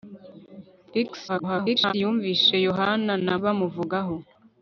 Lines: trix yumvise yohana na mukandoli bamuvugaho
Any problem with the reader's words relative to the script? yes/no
yes